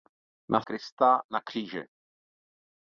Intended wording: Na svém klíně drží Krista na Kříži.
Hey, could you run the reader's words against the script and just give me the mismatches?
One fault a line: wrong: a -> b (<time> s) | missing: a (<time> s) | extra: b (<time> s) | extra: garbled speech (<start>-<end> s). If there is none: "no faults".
missing: svém klíně drží (0.6 s)